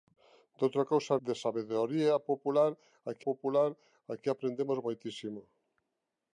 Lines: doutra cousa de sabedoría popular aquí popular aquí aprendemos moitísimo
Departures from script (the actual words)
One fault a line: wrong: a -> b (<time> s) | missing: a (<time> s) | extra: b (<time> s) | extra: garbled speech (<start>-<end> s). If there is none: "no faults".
no faults